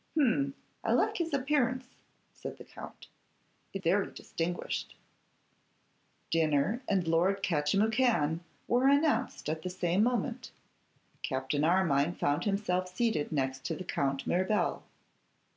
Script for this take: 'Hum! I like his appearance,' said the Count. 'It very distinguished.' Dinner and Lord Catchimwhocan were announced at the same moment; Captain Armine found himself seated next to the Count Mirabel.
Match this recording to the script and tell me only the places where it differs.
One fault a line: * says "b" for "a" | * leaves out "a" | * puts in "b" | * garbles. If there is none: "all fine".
all fine